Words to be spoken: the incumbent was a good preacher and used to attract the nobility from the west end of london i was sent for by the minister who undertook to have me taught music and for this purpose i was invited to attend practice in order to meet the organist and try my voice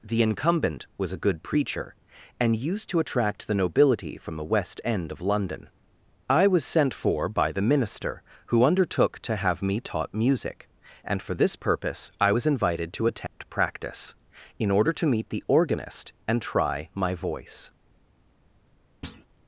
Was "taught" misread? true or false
false